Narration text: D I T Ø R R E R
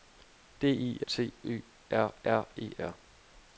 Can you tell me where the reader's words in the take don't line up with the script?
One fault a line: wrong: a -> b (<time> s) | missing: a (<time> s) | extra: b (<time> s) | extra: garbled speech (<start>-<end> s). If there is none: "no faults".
no faults